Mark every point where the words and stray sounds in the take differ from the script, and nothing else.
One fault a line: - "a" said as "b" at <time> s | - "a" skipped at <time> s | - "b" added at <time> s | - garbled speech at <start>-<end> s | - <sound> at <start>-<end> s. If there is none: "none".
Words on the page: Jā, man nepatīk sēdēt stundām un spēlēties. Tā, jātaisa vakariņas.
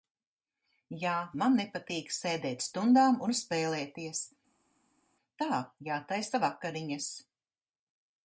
none